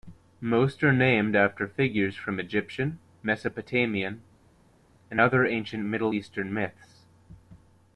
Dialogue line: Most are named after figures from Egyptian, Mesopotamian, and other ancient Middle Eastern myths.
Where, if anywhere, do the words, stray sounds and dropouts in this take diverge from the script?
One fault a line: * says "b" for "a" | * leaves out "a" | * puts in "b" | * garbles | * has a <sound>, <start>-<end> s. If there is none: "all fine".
all fine